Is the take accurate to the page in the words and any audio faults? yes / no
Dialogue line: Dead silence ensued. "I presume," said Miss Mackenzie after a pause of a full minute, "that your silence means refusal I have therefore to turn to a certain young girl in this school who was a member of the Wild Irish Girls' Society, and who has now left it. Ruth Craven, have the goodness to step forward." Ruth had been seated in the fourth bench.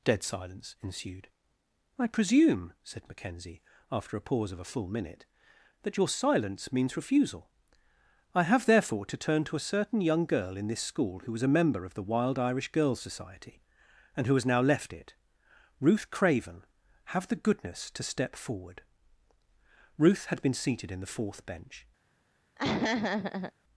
no